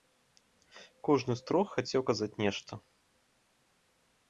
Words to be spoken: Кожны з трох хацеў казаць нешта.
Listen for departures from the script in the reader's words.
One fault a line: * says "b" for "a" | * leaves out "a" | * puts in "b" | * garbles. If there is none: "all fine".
all fine